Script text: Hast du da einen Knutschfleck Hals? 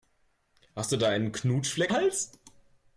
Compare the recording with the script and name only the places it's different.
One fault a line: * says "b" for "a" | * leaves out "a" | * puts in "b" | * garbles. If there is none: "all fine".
all fine